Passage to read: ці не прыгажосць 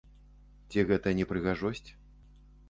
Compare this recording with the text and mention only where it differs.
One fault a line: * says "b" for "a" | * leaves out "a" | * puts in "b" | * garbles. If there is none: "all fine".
* puts in "гэта"